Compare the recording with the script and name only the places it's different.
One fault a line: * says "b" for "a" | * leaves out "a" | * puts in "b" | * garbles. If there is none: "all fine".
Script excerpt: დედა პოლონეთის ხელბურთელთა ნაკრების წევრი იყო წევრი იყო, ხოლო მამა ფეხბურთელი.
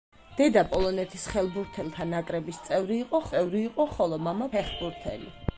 all fine